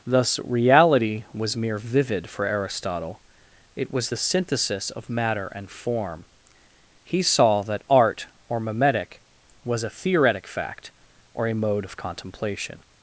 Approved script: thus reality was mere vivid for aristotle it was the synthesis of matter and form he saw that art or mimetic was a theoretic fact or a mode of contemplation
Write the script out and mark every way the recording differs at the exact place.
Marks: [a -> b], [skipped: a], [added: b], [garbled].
thus reality was mere vivid for aristotle it was the synthesis of matter and form he saw that art or mimetic was a theoretic fact or a mode of contemplation